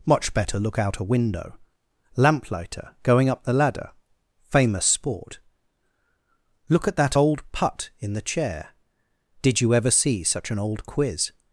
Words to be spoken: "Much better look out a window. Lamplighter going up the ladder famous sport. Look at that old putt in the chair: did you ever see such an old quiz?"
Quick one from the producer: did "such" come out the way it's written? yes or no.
yes